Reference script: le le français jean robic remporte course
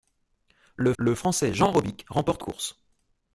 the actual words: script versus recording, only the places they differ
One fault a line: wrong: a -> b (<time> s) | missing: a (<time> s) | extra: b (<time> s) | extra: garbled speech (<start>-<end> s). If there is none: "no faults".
no faults